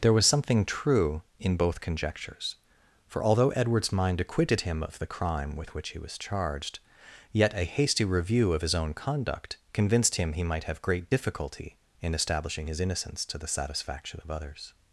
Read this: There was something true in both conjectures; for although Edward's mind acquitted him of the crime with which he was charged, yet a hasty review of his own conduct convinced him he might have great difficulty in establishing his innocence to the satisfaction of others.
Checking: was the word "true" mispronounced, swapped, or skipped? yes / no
no